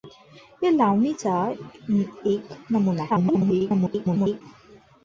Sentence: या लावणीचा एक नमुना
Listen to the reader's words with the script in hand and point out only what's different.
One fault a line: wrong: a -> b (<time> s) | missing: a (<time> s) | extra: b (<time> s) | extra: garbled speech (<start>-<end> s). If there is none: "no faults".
extra: garbled speech (3.1-4.4 s)